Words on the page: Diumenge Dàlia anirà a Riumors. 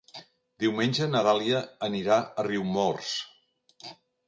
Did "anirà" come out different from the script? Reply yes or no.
no